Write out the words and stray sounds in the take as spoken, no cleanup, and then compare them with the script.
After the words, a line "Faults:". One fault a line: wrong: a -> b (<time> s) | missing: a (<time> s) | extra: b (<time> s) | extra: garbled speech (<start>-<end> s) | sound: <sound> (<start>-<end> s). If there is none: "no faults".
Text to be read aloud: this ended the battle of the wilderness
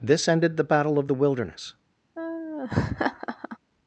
this ended the battle of the wilderness
Faults:
sound: laugh (2.1-3.6 s)